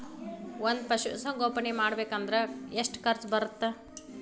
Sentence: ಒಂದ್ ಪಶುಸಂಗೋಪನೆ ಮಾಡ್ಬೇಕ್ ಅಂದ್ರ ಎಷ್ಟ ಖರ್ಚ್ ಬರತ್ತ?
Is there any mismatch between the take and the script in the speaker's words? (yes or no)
no